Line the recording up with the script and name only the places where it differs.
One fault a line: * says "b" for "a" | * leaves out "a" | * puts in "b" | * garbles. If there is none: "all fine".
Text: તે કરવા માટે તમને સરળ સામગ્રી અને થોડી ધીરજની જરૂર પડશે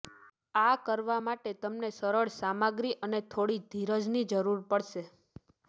* says "આ" for "તે"